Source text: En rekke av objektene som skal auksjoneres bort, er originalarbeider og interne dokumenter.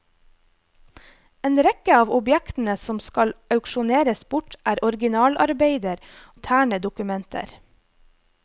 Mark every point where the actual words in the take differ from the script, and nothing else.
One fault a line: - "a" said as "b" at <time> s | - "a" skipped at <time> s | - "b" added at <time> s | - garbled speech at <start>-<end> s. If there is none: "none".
- "og" skipped at 6.0 s